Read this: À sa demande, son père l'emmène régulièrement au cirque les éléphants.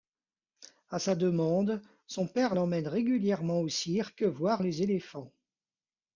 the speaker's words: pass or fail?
fail